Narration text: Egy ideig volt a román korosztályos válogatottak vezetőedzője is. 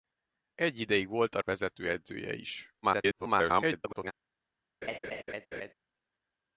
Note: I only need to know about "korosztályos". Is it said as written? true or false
false